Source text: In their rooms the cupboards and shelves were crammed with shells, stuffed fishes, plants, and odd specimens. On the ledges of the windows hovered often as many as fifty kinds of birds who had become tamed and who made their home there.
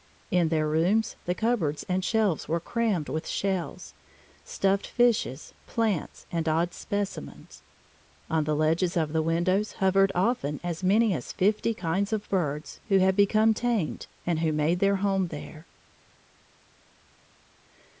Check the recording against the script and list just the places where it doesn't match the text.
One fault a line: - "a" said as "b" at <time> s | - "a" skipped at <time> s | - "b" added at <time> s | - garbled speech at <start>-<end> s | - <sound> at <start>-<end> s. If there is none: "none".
none